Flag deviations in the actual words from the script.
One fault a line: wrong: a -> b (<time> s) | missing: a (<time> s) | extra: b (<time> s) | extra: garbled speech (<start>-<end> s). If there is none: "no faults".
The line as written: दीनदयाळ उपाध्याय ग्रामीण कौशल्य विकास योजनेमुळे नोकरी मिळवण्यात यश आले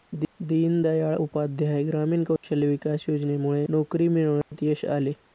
no faults